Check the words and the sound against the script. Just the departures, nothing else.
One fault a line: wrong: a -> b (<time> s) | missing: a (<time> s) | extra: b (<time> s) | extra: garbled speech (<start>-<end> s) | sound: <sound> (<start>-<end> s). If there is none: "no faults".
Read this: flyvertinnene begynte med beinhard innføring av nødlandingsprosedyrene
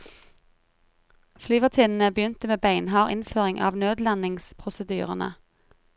no faults